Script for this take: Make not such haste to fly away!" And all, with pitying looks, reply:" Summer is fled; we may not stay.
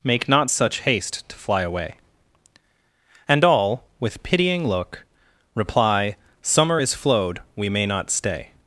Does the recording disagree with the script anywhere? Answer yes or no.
yes